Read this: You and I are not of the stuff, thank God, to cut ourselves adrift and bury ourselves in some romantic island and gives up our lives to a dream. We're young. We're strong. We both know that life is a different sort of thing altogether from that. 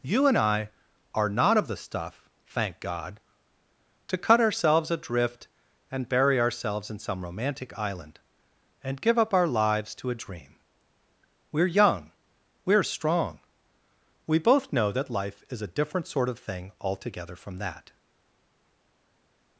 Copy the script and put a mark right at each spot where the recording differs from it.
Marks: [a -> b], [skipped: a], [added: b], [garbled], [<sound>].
You and I are not of the stuff, thank God, to cut ourselves adrift and bury ourselves in some romantic island and [gives -> give] up our lives to a dream. We're young. We're strong. We both know that life is a different sort of thing altogether from that.